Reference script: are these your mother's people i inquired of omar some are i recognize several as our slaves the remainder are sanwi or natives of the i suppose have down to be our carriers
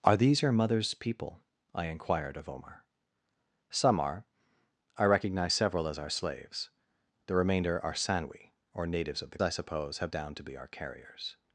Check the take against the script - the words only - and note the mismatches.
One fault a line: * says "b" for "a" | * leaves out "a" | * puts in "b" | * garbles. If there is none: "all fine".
all fine